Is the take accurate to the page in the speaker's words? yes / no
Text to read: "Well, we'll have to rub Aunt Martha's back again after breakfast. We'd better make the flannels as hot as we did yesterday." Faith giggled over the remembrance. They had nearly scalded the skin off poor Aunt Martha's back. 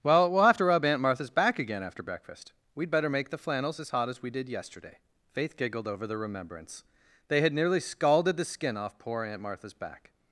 yes